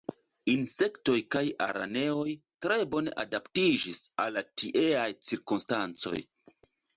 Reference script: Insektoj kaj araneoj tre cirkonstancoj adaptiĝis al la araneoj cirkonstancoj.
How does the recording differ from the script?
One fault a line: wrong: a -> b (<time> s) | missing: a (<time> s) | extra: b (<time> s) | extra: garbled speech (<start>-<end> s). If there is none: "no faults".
wrong: cirkonstancoj -> bone (2.9 s)
wrong: araneoj -> tieaj (4.6 s)